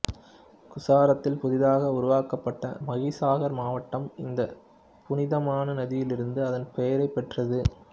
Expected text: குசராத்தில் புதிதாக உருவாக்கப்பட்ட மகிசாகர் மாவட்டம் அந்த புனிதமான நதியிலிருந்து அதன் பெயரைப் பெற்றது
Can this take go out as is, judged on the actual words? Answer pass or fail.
fail